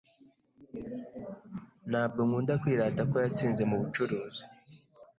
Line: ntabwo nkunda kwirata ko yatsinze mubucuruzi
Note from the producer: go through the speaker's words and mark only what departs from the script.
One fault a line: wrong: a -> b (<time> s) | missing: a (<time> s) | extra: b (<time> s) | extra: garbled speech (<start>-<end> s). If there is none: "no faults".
no faults